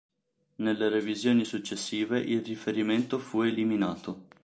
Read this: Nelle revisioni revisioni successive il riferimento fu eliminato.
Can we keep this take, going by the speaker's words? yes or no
no